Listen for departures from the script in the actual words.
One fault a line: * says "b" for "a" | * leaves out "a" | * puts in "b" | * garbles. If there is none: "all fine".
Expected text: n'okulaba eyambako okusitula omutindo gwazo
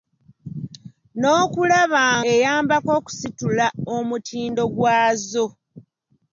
all fine